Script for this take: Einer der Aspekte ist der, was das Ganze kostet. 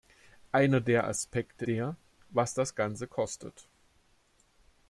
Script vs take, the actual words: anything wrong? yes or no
yes